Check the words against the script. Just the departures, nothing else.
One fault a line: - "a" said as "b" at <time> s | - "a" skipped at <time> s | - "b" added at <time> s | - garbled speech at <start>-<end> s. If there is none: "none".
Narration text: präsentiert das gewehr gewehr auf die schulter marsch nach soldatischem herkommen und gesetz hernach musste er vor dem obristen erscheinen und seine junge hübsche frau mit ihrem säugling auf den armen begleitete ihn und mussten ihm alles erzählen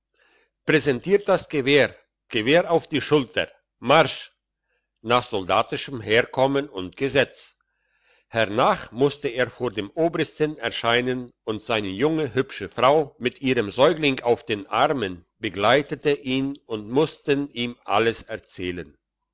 none